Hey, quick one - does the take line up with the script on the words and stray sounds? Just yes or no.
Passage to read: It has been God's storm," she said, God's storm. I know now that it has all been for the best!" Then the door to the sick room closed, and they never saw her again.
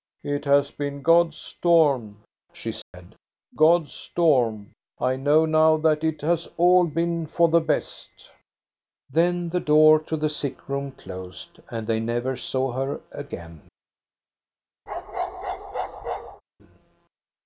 no